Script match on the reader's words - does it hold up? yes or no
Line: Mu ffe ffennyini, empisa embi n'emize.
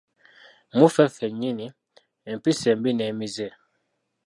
yes